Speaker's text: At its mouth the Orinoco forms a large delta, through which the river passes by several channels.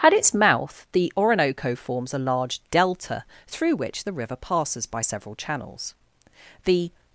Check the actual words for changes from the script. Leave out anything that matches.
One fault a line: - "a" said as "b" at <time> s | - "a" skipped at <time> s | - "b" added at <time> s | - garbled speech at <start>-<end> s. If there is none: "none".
- "The" added at 6.7 s